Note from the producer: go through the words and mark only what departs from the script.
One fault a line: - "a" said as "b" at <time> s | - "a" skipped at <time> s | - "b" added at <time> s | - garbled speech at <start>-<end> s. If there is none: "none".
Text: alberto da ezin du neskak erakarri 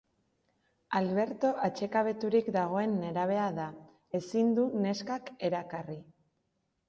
- "atsekabeturik dagoen nerabea" added at 1.7 s